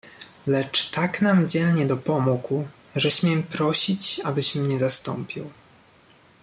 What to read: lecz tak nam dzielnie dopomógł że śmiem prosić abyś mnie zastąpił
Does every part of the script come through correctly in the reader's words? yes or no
yes